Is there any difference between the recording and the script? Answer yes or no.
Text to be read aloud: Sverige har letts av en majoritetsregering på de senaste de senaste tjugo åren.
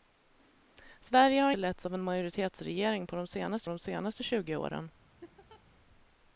no